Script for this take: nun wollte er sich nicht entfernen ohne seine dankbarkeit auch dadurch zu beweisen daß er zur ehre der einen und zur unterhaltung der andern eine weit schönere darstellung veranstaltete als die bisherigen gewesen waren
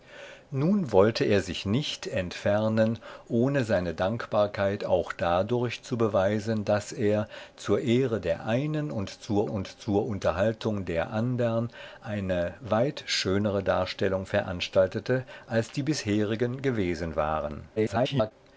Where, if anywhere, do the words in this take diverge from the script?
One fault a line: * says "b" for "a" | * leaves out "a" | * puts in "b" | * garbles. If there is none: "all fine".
* puts in "und zur"
* garbles